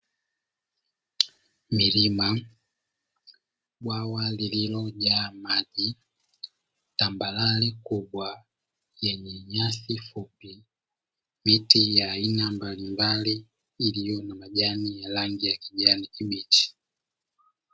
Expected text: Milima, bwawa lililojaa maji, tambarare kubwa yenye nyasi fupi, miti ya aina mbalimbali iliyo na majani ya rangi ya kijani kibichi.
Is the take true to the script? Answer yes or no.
yes